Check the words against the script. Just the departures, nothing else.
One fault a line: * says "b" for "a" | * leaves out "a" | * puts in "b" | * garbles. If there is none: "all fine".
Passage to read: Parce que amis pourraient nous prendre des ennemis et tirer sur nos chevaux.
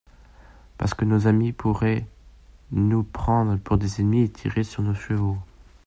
* puts in "nos"
* puts in "pour"